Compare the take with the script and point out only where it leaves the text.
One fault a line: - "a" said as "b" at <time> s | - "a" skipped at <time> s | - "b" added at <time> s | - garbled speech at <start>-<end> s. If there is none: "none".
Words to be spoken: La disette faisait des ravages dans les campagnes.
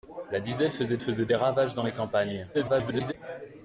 - "faisait" added at 1.0 s
- garbled speech at 2.5-3.1 s